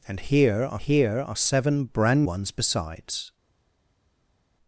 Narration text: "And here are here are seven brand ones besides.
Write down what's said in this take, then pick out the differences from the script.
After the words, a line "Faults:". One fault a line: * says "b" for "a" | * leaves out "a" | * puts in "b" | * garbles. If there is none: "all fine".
"And here are here are seven brand ones besides.
Faults:
all fine